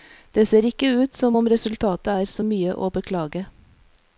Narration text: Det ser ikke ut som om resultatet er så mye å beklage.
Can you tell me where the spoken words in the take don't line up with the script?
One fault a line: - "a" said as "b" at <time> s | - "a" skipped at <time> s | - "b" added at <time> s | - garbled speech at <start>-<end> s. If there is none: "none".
none